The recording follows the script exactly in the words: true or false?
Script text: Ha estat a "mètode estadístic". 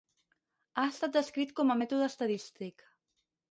false